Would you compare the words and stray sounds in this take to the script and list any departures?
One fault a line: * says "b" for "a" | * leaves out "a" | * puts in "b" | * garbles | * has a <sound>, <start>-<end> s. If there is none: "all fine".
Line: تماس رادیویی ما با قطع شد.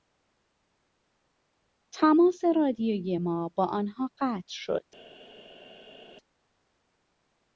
* puts in "آنها"